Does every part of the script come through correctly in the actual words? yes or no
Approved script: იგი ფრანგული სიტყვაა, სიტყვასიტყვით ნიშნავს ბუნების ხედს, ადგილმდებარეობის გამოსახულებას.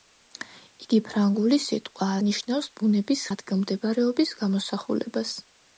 no